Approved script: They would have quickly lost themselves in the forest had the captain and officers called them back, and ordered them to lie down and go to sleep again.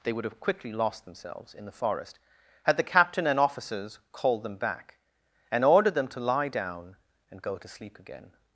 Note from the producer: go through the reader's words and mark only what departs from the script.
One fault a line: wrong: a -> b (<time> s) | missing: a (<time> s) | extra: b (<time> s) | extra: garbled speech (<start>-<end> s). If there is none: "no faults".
no faults